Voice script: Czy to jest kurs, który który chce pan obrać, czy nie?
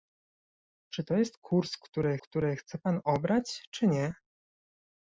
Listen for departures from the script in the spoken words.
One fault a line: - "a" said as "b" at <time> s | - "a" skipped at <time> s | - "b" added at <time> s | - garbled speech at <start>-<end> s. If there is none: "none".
none